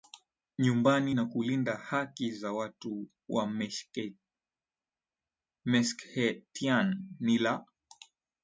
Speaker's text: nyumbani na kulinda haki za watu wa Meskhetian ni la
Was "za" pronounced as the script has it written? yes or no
yes